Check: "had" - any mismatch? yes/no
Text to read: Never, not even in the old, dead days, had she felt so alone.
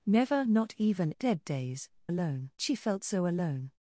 yes